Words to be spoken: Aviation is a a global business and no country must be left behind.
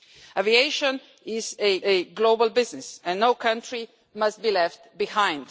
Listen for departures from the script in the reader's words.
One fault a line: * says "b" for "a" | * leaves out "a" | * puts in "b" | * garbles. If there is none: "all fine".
all fine